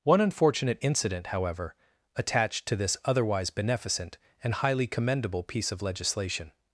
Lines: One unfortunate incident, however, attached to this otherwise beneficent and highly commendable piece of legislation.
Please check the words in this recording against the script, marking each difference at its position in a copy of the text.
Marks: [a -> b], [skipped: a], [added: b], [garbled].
One unfortunate incident, however, attached to this otherwise beneficent and highly commendable piece of legislation.